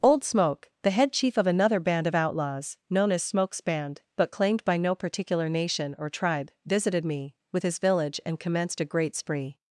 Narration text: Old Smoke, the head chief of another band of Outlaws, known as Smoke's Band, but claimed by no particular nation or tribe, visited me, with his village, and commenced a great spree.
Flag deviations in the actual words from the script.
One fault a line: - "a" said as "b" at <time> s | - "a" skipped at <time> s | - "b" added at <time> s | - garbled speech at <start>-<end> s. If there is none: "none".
none